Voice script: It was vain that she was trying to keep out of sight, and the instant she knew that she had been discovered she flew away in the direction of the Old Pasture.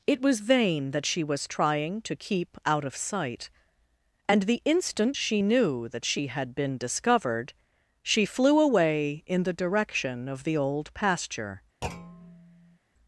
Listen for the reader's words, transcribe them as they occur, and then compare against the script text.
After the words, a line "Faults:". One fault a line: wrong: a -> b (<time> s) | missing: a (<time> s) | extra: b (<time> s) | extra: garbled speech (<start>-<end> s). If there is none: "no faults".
It was vain that she was trying to keep out of sight, and the instant she knew that she had been discovered she flew away in the direction of the Old Pasture.
Faults:
no faults